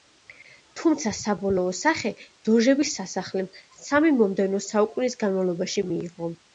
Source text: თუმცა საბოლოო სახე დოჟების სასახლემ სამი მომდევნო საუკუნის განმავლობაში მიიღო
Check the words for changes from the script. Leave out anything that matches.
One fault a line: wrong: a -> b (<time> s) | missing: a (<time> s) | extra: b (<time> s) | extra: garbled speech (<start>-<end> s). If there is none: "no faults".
no faults